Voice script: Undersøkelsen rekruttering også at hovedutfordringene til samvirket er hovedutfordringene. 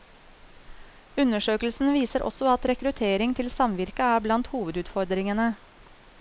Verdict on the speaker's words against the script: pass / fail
fail